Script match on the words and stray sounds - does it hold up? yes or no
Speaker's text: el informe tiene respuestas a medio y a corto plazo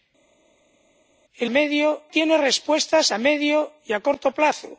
no